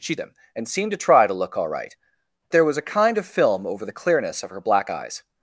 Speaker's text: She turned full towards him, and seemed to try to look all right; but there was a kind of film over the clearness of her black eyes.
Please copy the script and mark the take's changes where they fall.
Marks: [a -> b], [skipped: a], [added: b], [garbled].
She [skipped: turned full towards] him, and seemed to try to look all right; [skipped: but] there was a kind of film over the clearness of her black eyes.